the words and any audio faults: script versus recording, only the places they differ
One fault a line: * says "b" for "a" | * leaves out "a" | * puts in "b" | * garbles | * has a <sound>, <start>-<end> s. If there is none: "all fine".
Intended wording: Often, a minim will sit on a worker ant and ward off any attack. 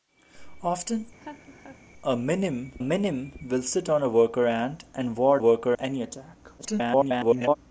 * has a laugh, 1.2-1.8 s
* puts in "minim"
* says "worker" for "off"
* garbles